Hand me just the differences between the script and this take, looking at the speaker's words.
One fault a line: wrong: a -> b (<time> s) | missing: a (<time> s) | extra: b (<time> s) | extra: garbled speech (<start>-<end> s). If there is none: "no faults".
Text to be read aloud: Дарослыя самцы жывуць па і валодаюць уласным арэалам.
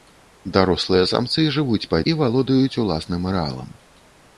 no faults